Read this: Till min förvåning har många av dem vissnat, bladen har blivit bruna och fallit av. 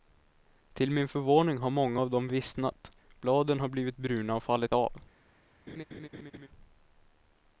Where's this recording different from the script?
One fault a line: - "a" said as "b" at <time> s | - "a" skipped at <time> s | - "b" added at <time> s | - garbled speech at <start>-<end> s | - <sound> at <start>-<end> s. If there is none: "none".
- laugh at 5.7-6.5 s